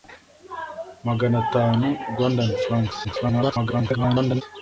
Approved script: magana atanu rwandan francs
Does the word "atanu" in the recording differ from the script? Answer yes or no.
no